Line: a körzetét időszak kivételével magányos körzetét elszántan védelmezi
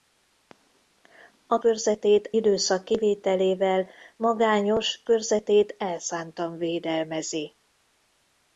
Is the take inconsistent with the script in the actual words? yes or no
no